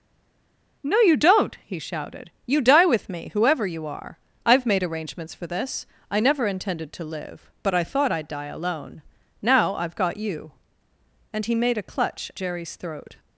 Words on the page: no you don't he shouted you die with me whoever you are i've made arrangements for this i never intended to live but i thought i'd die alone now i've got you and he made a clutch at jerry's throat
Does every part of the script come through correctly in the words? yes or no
no